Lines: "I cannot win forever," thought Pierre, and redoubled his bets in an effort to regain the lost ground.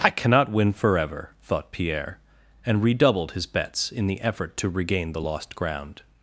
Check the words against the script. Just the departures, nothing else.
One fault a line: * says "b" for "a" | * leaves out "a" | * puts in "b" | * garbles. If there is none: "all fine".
* says "the" for "an"